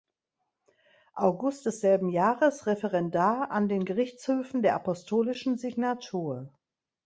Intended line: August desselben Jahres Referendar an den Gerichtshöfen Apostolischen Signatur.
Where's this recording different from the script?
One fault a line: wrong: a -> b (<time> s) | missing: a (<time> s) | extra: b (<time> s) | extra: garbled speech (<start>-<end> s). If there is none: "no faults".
extra: der (4.6 s)